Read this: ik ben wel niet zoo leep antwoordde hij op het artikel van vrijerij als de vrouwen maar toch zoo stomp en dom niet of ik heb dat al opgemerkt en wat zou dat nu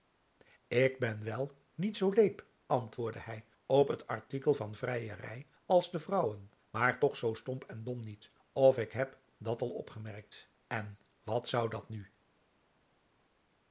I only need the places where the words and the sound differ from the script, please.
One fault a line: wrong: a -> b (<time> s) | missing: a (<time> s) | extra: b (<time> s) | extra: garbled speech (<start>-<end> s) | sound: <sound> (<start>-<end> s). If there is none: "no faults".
no faults